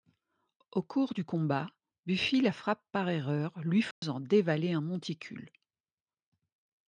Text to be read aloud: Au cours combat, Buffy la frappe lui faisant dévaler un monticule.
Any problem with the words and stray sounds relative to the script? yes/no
yes